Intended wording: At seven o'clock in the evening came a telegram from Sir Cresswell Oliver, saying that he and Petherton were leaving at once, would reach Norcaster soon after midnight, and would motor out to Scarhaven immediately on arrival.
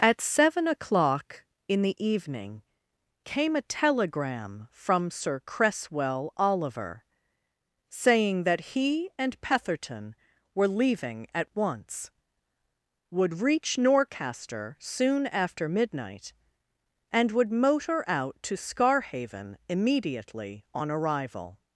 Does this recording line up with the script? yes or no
yes